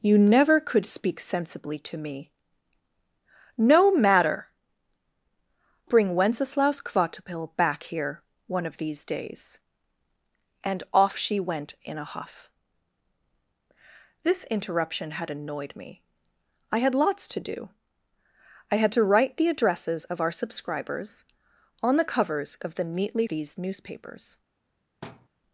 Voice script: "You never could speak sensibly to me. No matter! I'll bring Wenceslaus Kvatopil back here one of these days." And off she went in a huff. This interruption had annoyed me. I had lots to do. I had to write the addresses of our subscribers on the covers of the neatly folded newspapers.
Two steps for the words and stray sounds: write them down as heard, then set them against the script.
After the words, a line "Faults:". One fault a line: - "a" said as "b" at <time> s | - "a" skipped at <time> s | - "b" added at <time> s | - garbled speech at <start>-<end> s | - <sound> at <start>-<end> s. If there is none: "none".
"You never could speak sensibly to me. No matter! Bring Wenceslaus Kvatopil back here one of these days." And off she went in a huff. This interruption had annoyed me. I had lots to do. I had to write the addresses of our subscribers on the covers of the neatly these newspapers.
Faults:
- "I'll" skipped at 4.5 s
- "folded" said as "these" at 23.3 s
- thud at 25.0-25.3 s